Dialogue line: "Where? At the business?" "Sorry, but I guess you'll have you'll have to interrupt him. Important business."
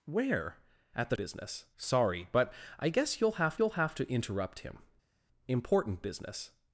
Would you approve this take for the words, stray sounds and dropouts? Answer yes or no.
yes